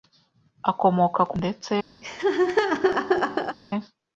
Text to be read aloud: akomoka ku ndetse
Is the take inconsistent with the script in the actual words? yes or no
no